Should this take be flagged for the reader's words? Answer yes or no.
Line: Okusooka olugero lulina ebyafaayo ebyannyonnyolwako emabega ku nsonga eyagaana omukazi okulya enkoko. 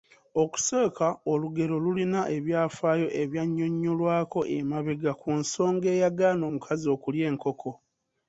no